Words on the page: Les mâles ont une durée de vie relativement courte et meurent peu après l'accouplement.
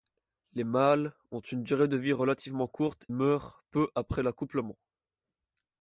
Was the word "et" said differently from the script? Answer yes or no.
yes